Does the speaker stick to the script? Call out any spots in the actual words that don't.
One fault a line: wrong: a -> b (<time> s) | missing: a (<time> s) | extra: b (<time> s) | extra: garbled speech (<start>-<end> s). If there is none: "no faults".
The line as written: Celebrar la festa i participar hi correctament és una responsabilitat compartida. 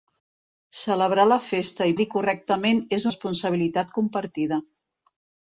missing: participar (1.9 s)
missing: una (3.1 s)